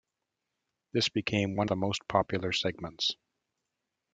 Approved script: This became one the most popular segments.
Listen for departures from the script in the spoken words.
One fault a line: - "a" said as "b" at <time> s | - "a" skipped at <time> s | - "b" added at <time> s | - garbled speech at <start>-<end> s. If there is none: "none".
none